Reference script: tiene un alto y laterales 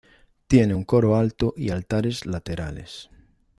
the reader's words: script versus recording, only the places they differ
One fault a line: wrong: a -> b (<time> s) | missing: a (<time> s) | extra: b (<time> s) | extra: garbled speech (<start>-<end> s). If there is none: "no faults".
extra: coro (0.8 s)
extra: altares (1.7 s)